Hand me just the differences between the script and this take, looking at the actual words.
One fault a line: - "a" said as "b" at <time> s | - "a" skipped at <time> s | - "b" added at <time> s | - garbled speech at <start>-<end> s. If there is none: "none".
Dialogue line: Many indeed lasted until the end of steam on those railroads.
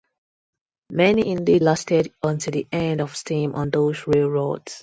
none